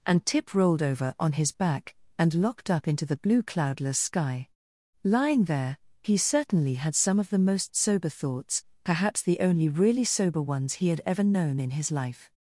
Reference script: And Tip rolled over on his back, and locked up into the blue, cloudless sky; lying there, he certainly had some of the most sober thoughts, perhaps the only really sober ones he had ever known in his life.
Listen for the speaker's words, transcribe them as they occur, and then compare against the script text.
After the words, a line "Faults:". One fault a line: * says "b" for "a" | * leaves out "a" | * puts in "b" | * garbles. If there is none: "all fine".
And Tip rolled over on his back, and locked up into the blue, cloudless sky; lying there, he certainly had some of the most sober thoughts, perhaps the only really sober ones he had ever known in his life.
Faults:
all fine